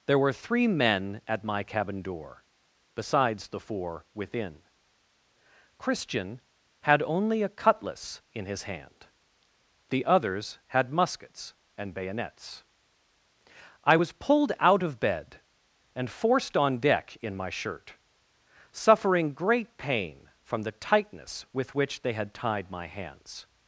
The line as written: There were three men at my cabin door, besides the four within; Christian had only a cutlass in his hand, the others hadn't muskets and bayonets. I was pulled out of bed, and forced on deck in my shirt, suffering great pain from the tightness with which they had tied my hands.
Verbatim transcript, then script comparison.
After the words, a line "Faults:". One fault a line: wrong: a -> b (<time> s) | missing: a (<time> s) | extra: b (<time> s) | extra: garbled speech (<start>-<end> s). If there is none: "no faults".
There were three men at my cabin door, besides the four within; Christian had only a cutlass in his hand, the others had muskets and bayonets. I was pulled out of bed, and forced on deck in my shirt, suffering great pain from the tightness with which they had tied my hands.
Faults:
wrong: hadn't -> had (10.7 s)